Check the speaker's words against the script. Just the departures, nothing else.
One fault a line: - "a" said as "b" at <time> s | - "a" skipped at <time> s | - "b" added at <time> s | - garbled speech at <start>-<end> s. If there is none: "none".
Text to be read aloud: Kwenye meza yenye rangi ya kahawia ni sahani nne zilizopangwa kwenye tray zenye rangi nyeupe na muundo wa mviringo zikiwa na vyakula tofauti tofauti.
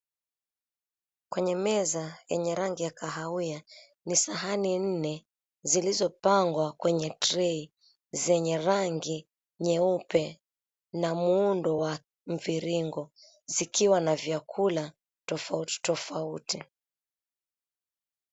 none